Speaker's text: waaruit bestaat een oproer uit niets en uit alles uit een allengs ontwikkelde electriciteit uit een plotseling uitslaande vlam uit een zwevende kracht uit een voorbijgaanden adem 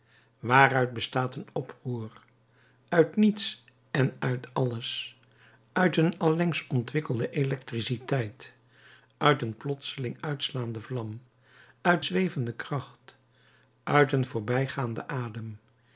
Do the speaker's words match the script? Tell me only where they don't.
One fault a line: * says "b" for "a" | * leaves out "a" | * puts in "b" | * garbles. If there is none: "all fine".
* leaves out "een"